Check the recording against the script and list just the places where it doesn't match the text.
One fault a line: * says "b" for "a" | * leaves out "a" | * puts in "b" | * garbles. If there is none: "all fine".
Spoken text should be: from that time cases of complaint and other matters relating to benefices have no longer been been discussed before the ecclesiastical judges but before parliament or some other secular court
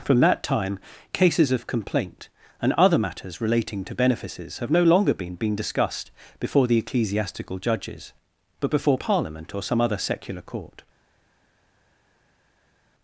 all fine